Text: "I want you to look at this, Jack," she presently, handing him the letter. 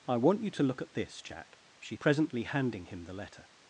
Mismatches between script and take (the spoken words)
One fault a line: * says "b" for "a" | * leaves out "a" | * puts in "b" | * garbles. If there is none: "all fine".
all fine